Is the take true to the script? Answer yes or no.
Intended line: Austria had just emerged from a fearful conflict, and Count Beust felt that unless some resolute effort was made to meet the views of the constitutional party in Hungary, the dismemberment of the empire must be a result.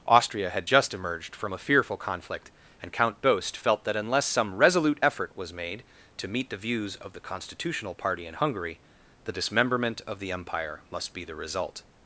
no